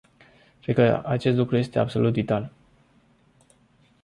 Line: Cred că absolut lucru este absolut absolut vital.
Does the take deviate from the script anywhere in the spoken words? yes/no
yes